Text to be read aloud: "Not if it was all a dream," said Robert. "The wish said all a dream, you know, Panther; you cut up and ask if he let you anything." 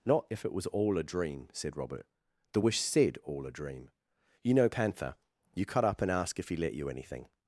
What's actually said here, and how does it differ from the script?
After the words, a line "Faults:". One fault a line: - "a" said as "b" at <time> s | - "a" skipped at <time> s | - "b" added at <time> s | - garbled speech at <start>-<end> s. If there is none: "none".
"Not if it was all a dream," said Robert. "The wish said all a dream, you know, Panther; you cut up and ask if he let you anything."
Faults:
none